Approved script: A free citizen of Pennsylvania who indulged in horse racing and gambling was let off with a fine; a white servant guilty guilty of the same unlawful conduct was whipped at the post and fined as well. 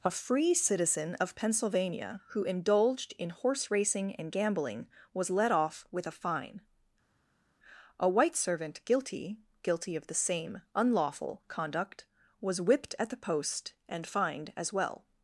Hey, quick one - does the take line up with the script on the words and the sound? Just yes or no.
yes